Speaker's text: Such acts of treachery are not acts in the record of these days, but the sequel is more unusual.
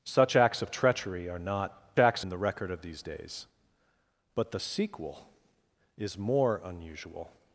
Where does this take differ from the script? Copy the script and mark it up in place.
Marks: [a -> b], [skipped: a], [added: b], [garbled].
Such acts of treachery are not acts in the record of these days, but the sequel is more unusual.